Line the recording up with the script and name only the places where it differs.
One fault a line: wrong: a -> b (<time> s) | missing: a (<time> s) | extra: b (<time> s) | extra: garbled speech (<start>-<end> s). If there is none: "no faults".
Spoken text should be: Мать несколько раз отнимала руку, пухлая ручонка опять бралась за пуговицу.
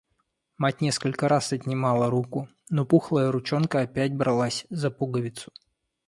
extra: но (2.7 s)